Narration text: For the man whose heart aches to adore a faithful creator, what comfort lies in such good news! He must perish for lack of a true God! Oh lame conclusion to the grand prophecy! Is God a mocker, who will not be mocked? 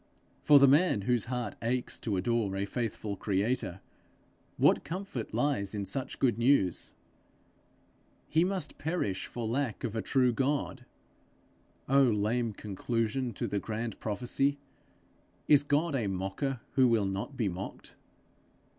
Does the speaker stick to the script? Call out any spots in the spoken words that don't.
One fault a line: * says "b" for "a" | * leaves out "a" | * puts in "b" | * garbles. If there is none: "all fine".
all fine